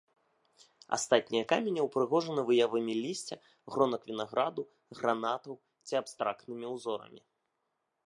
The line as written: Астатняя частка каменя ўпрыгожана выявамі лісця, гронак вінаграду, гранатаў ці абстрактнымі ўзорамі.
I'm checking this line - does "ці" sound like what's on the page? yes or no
yes